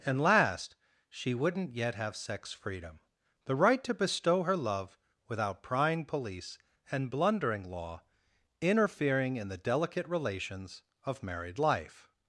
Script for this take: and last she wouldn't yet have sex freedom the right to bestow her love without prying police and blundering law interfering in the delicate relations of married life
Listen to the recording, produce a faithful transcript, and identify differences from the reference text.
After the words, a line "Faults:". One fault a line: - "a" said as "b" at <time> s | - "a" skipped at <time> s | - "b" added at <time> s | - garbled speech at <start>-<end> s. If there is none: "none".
and last she wouldn't yet have sex freedom the right to bestow her love without prying police and blundering law interfering in the delicate relations of married life
Faults:
none